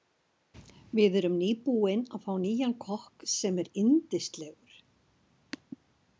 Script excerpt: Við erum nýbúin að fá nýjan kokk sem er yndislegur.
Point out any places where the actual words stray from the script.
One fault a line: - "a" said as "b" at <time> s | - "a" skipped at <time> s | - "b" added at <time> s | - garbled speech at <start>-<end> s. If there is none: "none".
none